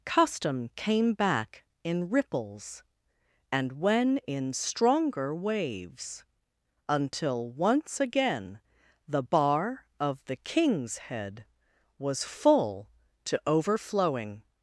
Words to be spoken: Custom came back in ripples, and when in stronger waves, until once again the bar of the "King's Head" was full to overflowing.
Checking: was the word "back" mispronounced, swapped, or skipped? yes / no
no